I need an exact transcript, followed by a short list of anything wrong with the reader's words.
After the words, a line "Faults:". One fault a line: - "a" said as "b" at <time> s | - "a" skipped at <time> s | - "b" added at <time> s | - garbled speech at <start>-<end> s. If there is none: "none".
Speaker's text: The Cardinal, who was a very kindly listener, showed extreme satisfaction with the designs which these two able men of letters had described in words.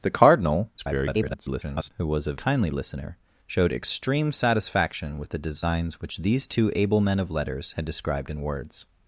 The Cardinal, [garbled] who was a kindly listener, showed extreme satisfaction with the designs which these two able men of letters had described in words.
Faults:
- garbled speech at 0.8-1.9 s
- "very" skipped at 2.3 s